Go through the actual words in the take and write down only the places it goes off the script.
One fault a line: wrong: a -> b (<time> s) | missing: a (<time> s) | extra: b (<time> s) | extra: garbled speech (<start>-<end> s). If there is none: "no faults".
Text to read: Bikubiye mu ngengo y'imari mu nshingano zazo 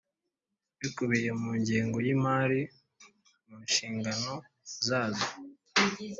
no faults